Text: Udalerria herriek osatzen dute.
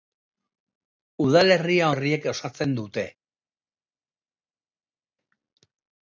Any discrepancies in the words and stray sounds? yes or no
no